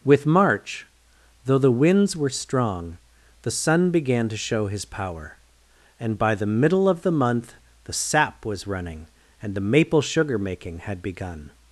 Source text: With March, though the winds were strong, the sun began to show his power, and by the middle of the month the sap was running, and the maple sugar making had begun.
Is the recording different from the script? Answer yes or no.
no